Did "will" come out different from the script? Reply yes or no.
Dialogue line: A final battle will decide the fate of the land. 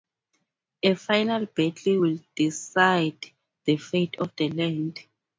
no